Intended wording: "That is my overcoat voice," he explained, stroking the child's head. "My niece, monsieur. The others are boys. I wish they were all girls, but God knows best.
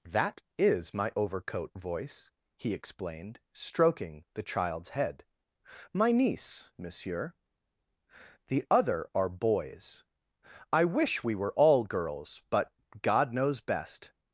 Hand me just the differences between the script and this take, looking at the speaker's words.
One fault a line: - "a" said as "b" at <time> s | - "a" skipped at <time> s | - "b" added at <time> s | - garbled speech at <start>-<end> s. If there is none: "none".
- "others" said as "other" at 8.7 s
- "they" said as "we" at 11.2 s